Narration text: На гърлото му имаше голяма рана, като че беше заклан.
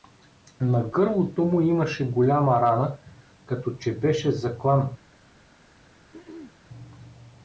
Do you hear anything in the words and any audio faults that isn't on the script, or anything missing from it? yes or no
yes